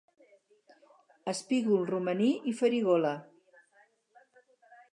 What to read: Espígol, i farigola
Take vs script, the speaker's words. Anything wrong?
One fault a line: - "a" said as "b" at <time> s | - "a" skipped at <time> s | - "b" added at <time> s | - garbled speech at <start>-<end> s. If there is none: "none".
- "romaní" added at 1.9 s